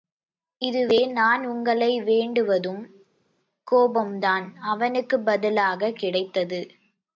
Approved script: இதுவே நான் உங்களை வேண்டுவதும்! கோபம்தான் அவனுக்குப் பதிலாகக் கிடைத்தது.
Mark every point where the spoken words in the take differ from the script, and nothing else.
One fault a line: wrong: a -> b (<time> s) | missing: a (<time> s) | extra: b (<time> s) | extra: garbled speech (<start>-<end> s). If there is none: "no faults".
no faults